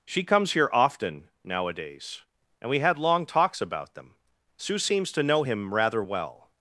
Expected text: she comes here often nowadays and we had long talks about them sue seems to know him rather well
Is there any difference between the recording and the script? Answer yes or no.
no